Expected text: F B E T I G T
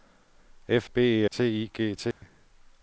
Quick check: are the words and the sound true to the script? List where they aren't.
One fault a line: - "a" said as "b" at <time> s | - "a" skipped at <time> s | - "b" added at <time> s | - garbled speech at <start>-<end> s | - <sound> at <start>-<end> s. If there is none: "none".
- dropout at 2.1-2.2 s